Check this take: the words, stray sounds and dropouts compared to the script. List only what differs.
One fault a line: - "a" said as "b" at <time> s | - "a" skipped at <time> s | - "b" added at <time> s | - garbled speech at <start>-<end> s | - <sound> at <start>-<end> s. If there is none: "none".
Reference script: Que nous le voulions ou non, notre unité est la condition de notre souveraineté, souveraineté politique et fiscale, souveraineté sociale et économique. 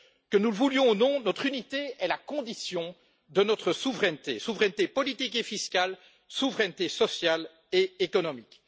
none